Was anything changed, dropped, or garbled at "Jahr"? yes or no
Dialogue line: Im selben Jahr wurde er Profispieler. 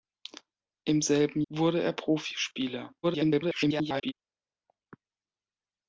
yes